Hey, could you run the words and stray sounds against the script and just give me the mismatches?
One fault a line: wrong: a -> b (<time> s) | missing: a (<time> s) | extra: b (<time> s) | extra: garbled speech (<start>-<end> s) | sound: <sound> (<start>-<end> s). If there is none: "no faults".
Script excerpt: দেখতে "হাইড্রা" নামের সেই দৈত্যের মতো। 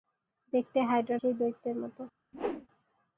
missing: নামের (1.2 s)
sound: whoosh (2.3-2.7 s)